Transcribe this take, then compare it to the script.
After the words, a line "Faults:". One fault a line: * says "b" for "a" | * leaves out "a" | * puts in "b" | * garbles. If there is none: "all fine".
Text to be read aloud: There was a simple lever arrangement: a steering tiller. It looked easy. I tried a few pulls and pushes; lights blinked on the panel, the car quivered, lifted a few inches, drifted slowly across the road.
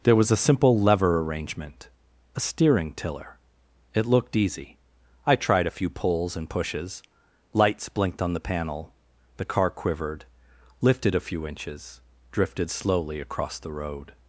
There was a simple lever arrangement: a steering tiller. It looked easy. I tried a few pulls and pushes; lights blinked on the panel, the car quivered, lifted a few inches, drifted slowly across the road.
Faults:
all fine